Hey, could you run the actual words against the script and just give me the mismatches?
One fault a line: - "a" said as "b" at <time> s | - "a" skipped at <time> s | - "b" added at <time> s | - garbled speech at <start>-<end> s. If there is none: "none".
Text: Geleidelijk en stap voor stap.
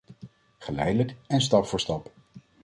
none